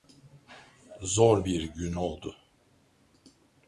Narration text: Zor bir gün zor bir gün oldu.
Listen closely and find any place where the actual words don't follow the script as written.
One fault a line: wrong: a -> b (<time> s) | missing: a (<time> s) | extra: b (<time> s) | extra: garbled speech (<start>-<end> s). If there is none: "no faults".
missing: zor bir gün (1.9 s)